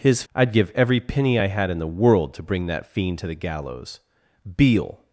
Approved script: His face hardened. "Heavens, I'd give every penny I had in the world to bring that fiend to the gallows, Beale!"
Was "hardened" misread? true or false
true